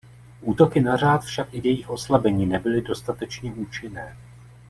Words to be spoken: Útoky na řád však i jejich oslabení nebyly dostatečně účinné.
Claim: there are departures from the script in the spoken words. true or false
false